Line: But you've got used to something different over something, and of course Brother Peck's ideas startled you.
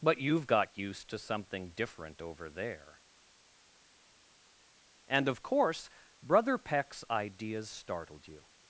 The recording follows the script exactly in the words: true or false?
false